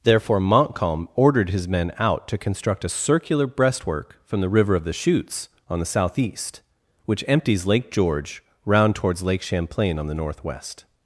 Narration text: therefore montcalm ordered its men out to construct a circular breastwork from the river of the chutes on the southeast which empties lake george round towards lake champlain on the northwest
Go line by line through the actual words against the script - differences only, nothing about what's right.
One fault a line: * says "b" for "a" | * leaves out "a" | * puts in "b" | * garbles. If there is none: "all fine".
* says "his" for "its"